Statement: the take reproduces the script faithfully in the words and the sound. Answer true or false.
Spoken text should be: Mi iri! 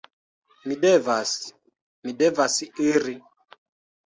false